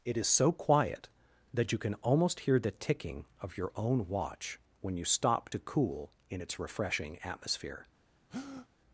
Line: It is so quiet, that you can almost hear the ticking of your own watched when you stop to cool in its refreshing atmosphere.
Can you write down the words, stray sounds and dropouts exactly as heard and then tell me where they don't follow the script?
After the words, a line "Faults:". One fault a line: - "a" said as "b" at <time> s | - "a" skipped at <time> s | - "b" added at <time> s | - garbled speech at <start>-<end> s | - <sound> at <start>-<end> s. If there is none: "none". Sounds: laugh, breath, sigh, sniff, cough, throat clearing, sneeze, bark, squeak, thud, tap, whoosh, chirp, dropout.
It is so quiet, that you can almost hear the ticking of your own watch when you stop to cool in its refreshing atmosphere.
Faults:
- "watched" said as "watch" at 4.1 s
- breath at 8.3-8.7 s